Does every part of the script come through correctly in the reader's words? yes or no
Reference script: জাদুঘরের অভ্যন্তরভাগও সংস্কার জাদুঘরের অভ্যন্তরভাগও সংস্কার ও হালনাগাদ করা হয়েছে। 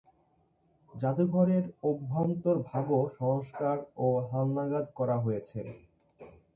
no